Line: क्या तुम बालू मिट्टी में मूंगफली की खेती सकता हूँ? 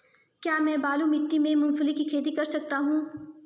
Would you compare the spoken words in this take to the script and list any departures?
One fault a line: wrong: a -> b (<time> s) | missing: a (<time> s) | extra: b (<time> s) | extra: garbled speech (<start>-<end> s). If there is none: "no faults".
wrong: तुम -> मैं (0.6 s)
extra: कर (2.3 s)